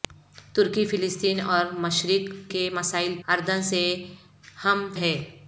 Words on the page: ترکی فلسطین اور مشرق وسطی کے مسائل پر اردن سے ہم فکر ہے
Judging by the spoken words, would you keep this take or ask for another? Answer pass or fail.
fail